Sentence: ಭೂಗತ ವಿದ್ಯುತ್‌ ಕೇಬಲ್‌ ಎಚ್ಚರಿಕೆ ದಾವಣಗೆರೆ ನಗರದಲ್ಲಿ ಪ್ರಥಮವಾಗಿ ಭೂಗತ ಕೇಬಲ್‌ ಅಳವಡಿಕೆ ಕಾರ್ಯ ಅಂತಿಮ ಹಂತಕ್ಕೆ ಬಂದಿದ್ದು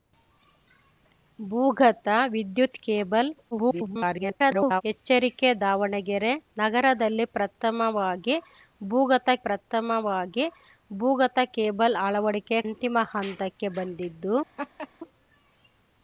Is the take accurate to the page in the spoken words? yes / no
no